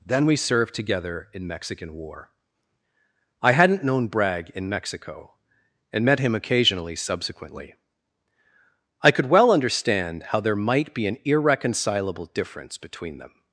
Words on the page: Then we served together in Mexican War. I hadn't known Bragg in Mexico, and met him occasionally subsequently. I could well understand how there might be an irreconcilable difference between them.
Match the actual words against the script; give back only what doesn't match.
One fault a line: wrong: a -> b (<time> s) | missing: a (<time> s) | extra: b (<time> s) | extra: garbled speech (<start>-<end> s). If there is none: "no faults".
no faults